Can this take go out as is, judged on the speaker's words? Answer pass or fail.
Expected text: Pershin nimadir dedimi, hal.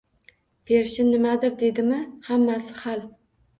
fail